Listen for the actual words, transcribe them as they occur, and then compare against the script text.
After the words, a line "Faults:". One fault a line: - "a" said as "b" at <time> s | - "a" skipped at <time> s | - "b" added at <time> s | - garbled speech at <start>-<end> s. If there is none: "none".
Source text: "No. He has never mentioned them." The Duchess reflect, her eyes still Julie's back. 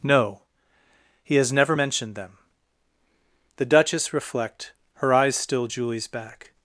"No. He has never mentioned them." The Duchess reflect, her eyes still Julie's back.
Faults:
none